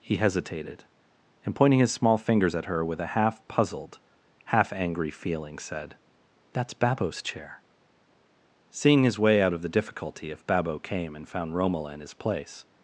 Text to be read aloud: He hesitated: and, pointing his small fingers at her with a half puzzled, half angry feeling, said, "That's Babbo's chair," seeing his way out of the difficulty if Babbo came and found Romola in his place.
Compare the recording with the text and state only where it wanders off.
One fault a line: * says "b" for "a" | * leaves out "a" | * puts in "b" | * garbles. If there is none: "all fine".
all fine